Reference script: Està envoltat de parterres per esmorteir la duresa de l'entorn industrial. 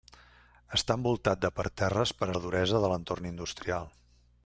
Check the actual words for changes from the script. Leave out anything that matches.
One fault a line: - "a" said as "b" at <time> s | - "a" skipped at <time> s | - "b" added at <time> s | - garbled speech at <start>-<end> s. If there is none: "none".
- "esmorteir" skipped at 2.3 s